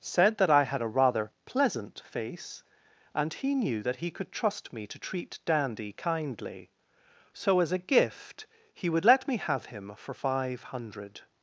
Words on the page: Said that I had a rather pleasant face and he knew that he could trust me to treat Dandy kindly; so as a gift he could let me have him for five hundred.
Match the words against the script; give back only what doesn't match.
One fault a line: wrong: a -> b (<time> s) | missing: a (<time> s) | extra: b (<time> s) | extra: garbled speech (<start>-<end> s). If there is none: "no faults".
wrong: could -> would (8.9 s)